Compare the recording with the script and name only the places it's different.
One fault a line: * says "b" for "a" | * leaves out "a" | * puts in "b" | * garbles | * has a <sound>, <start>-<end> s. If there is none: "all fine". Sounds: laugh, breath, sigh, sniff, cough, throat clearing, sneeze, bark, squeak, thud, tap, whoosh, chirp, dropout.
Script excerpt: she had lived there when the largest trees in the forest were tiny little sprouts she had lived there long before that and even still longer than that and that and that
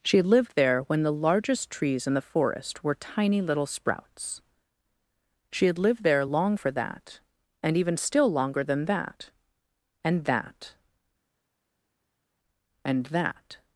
* says "for" for "before"